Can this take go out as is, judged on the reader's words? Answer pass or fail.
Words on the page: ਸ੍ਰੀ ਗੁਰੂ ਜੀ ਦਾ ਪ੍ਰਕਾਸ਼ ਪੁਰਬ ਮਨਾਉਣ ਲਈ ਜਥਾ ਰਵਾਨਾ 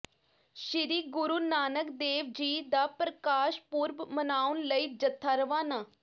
fail